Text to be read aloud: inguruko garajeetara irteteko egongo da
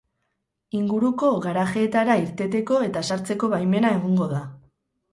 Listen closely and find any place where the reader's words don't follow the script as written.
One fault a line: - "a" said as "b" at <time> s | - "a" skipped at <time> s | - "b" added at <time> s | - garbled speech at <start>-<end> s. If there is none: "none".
- "eta sartzeko baimena" added at 2.9 s